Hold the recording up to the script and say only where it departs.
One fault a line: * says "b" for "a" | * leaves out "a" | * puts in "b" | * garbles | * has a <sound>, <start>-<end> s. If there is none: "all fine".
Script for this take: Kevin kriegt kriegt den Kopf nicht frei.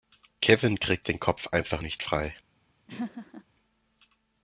* leaves out "kriegt"
* puts in "einfach"
* has a laugh, 2.9-3.4 s